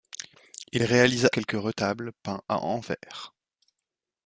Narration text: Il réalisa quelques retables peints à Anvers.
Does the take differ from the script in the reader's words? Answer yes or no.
no